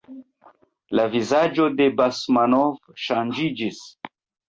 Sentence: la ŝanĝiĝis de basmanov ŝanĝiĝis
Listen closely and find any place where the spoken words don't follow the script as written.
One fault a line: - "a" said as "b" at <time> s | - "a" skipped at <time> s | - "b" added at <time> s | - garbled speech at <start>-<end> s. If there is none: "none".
- "ŝanĝiĝis" said as "vizaĝo" at 1.2 s